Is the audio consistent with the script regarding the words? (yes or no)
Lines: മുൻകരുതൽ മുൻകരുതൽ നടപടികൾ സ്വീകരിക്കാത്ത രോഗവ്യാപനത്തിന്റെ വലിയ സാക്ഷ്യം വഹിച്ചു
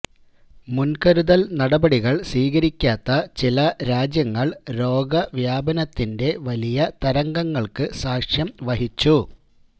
no